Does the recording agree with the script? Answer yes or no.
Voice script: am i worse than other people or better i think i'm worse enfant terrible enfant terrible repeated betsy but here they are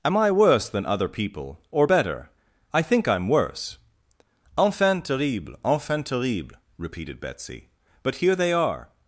yes